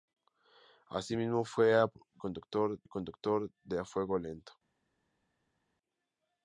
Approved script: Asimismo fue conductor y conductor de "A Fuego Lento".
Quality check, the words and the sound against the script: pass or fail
pass